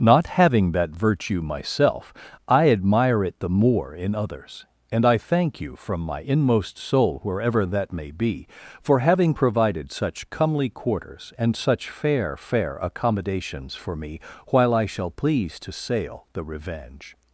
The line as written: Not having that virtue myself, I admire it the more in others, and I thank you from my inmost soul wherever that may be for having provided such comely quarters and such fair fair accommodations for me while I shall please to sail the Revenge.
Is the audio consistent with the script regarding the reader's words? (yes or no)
yes